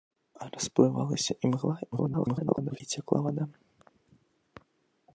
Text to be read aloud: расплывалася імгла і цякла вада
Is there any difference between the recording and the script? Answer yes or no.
yes